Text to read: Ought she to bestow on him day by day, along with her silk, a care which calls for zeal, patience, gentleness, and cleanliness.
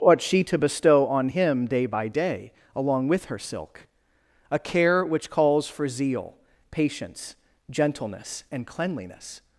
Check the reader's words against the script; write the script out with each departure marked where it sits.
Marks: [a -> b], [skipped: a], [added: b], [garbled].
Ought she to bestow on him day by day, along with her silk, a care which calls for zeal, patience, gentleness, and cleanliness.